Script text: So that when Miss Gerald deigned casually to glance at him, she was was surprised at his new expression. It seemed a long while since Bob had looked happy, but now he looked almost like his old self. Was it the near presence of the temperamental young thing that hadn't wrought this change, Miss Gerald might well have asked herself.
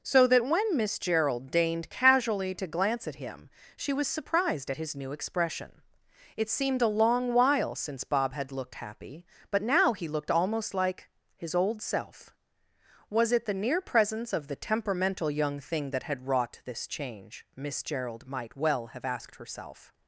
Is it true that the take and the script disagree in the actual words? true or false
true